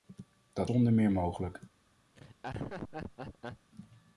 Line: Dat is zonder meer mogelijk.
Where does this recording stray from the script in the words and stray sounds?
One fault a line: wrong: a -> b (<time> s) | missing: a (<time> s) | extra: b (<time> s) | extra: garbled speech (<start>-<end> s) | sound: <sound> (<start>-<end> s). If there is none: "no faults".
missing: is (0.7 s)
sound: laugh (2.1-3.7 s)